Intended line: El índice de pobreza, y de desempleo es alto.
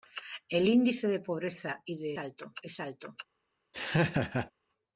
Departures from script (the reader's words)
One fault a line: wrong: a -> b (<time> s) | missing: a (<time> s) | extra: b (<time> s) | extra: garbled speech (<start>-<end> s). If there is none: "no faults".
wrong: desempleo -> alto (2.2 s)